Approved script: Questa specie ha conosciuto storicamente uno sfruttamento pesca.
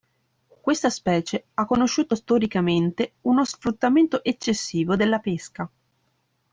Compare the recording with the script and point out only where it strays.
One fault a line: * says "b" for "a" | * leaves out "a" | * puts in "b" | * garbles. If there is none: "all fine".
* puts in "eccessivo della"